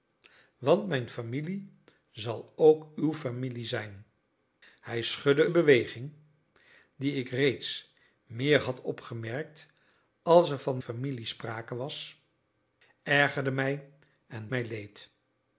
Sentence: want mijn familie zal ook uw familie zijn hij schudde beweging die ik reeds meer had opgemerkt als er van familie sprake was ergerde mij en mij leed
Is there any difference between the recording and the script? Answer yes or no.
no